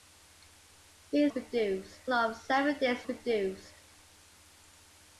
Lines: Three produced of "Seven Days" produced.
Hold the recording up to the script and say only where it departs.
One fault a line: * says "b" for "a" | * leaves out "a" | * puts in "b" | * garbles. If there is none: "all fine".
all fine